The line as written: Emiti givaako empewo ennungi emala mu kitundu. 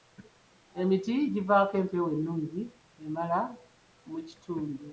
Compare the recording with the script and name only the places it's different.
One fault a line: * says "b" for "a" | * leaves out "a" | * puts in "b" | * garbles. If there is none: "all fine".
all fine